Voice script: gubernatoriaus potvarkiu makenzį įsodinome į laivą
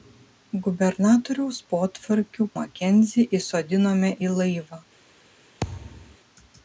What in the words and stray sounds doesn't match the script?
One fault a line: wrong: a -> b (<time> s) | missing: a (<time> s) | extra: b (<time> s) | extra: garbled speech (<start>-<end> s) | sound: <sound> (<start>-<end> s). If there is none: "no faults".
sound: thud (5.6-6.2 s)